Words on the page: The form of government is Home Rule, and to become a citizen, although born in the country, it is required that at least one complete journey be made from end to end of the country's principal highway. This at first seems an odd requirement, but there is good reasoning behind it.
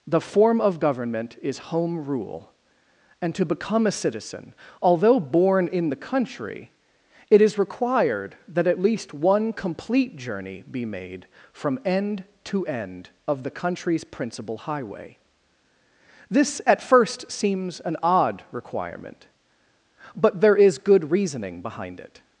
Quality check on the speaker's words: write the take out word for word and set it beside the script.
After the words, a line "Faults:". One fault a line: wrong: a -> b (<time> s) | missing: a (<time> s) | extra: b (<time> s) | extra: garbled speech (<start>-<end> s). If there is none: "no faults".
The form of government is Home Rule, and to become a citizen, although born in the country, it is required that at least one complete journey be made from end to end of the country's principal highway. This at first seems an odd requirement, but there is good reasoning behind it.
Faults:
no faults